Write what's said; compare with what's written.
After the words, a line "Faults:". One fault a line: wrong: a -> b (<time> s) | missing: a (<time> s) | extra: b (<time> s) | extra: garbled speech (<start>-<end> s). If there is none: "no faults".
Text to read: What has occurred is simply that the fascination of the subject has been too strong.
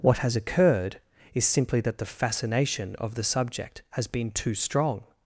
What has occurred is simply that the fascination of the subject has been too strong.
Faults:
no faults